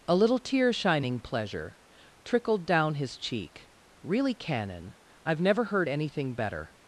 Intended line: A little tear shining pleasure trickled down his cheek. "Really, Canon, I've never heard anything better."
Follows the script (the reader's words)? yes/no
yes